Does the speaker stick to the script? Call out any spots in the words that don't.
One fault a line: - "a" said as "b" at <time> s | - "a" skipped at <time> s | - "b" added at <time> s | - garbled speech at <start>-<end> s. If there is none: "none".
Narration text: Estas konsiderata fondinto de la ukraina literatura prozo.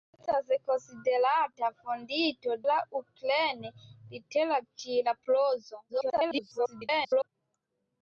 - "de" skipped at 2.5 s
- garbled speech at 5.9-7.3 s